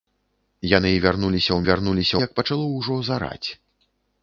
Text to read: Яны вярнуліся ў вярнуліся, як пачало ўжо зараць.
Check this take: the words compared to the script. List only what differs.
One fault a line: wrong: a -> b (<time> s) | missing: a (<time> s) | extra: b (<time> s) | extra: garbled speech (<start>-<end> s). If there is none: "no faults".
no faults